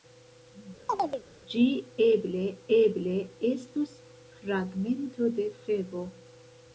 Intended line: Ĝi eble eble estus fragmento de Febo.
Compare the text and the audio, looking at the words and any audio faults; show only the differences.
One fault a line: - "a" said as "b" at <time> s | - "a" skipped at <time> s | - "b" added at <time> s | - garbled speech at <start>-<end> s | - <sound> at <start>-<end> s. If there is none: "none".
- chirp at 0.9-1.2 s